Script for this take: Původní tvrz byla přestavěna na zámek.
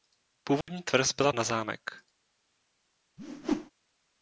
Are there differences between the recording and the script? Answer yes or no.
yes